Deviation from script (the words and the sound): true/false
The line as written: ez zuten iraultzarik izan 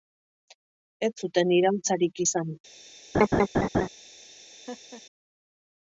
true